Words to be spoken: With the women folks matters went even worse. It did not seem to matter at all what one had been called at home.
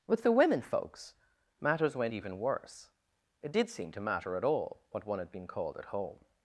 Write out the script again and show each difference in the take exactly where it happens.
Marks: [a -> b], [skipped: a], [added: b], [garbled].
With the women folks matters went even worse. It did [skipped: not] seem to matter at all what one had been called at home.